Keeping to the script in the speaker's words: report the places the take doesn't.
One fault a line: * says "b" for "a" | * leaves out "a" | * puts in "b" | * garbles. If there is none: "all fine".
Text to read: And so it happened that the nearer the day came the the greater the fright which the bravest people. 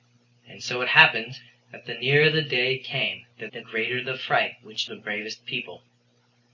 all fine